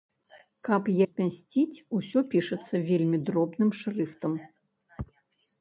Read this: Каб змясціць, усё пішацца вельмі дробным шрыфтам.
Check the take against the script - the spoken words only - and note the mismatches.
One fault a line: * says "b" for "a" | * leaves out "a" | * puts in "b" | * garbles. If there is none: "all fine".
all fine